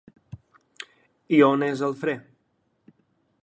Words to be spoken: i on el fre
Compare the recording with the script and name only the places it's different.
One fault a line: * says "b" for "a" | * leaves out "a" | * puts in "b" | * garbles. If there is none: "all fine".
* puts in "és"